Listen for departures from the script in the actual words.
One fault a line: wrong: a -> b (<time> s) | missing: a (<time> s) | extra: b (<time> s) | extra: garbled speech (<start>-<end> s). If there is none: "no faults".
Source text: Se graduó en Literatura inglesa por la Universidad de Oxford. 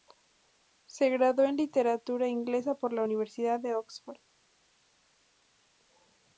no faults